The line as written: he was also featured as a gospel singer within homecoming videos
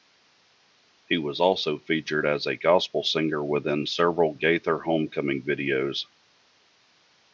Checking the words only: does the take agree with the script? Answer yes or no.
no